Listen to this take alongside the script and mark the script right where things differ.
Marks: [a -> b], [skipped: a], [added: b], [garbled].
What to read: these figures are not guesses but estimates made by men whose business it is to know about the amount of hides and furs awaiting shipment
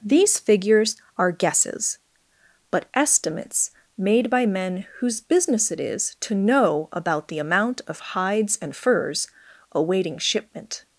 these figures are [skipped: not] guesses but estimates made by men whose business it is to know about the amount of hides and furs awaiting shipment